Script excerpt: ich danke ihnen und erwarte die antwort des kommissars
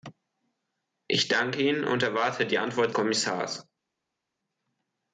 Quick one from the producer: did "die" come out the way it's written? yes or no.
yes